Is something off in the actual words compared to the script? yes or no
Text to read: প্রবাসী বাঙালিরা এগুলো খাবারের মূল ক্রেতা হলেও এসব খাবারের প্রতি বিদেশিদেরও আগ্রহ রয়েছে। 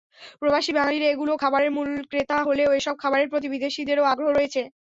no